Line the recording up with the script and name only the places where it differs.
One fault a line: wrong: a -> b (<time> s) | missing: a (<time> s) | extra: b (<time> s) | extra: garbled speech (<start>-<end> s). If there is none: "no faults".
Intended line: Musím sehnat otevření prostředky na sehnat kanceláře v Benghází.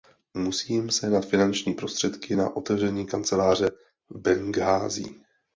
wrong: otevření -> finanční (1.2 s)
wrong: sehnat -> otevření (2.6 s)